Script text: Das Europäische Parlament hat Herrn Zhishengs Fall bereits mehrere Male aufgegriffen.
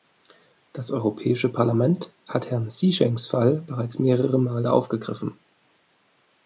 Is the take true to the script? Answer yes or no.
yes